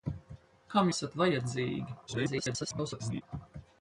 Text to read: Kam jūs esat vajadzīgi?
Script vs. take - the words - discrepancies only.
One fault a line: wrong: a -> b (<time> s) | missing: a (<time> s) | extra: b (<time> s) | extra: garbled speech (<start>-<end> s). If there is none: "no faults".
missing: jūs (0.9 s)
extra: garbled speech (2.1-3.2 s)